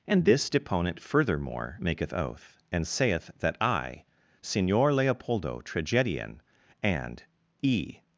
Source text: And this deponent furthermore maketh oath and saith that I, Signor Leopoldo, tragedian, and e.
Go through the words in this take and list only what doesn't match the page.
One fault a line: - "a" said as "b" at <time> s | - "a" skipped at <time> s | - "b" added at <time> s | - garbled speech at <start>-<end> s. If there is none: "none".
none